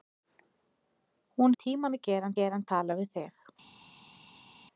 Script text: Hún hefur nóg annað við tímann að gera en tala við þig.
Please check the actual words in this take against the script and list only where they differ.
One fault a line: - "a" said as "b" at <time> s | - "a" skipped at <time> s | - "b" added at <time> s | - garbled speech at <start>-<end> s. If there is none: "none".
- "hefur nóg annað" skipped at 1.6 s
- "gera" added at 2.4 s